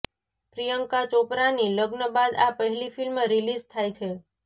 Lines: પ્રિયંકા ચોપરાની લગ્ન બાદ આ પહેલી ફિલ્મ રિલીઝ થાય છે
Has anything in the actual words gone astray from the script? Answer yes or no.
no